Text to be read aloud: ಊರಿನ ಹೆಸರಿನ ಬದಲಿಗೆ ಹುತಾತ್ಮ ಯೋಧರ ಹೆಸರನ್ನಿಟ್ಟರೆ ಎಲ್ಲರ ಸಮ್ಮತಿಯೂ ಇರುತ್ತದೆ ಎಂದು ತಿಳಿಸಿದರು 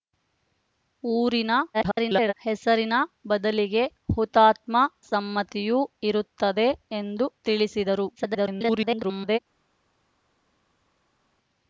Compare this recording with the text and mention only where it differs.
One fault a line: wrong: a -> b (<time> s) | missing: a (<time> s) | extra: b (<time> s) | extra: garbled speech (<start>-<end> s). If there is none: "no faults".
extra: garbled speech (1.7-2.3 s)
missing: ಯೋಧರ ಹೆಸರನ್ನಿಟ್ಟರೆ ಎಲ್ಲರ (4.8 s)
extra: garbled speech (8.2-9.4 s)